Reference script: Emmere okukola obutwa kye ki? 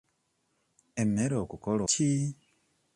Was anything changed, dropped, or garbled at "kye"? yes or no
yes